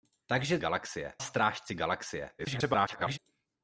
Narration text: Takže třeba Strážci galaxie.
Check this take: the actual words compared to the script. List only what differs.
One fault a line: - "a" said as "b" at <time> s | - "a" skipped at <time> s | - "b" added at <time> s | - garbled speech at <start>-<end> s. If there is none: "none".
- "třeba" said as "galaxie" at 0.6 s
- garbled speech at 2.4-3.2 s